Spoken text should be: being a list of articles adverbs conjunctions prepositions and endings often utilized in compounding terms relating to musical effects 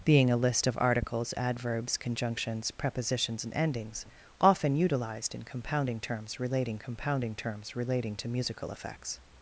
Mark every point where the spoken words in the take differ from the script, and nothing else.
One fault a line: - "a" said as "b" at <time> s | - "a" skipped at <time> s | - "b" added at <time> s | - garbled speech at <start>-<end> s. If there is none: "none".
- "compounding terms relating" added at 6.8 s